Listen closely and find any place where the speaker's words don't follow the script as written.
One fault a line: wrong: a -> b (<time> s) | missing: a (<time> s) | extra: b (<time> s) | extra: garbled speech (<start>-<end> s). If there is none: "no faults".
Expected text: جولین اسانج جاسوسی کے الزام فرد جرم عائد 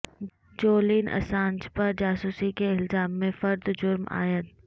extra: پر (1.8 s)
extra: میں (3.2 s)